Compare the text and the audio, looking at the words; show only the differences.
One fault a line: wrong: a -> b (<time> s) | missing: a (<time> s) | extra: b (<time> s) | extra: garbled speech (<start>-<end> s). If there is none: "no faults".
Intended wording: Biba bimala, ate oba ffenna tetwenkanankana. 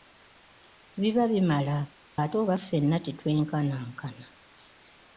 no faults